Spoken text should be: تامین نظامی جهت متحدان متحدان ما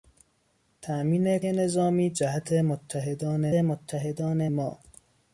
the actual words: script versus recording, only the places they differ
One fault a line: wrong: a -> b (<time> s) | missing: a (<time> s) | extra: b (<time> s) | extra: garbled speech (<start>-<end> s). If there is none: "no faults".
no faults